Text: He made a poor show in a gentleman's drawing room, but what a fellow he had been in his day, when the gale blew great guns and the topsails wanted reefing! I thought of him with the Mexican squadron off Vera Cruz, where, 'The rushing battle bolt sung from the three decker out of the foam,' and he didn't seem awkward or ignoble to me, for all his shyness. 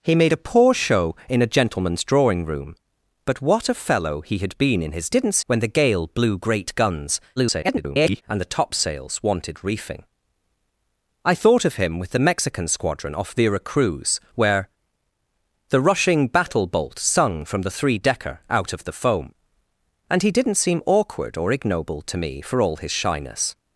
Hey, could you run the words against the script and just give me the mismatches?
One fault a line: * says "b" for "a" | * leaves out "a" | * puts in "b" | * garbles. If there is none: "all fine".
* says "didn't" for "day"
* garbles